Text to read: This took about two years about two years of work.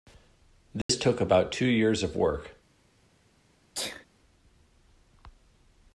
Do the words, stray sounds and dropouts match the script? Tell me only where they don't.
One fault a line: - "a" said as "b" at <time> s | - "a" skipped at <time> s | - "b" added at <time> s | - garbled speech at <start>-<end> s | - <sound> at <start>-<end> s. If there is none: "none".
- dropout at 0.8-0.9 s
- "about two years" skipped at 2.0 s
- sneeze at 3.7-4.1 s